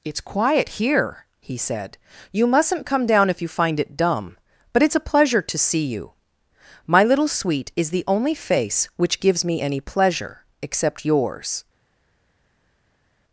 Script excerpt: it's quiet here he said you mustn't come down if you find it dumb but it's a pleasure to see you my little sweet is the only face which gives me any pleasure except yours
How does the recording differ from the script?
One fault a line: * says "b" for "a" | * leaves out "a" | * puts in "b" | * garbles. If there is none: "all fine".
all fine